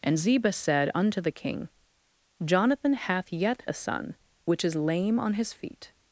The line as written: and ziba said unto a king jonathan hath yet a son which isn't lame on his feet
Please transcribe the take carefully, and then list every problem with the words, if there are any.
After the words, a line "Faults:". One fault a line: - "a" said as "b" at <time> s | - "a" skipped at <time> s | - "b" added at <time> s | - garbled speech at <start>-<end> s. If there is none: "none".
and ziba said unto the king jonathan hath yet a son which is lame on his feet
Faults:
- "a" said as "the" at 1.2 s
- "isn't" said as "is" at 4.6 s